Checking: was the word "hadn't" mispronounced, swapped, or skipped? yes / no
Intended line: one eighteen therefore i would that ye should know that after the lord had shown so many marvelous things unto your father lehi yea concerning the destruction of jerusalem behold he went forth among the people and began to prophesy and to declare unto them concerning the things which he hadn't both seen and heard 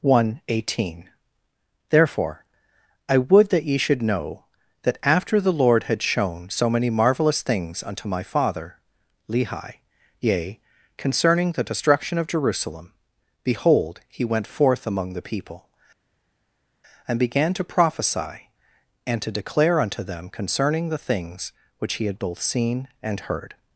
yes